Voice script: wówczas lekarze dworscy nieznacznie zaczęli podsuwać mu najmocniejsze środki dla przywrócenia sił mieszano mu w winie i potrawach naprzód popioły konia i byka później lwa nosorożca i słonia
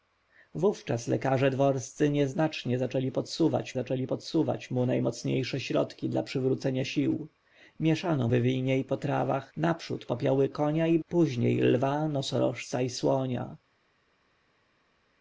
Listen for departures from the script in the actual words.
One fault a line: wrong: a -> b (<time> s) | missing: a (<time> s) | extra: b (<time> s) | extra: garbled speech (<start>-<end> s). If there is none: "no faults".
extra: zaczęli podsuwać (3.7 s)
missing: mu (8.3 s)
missing: byka (11.0 s)